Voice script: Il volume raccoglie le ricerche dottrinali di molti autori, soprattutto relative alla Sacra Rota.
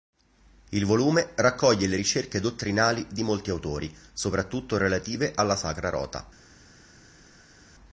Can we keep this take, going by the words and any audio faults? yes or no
yes